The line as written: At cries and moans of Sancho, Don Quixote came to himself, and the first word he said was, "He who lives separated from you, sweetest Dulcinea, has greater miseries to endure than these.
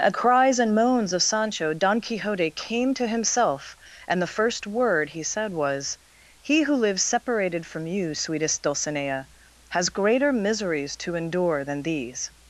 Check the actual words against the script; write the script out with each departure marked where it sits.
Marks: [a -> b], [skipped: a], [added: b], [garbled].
At cries and moans of Sancho, Don Quixote came to himself, and the first word he said was, "He who lives separated from you, sweetest Dulcinea, has greater miseries to endure than these.